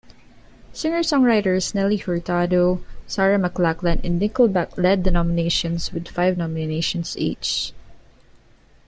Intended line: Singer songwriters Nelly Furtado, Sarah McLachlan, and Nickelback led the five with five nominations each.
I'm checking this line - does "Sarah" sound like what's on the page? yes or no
yes